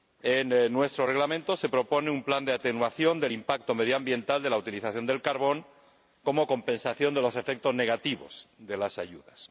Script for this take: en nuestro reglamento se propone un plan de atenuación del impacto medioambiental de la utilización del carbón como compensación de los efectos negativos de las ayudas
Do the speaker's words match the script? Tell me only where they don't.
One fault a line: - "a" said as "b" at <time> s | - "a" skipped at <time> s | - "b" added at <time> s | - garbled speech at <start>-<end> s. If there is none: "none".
none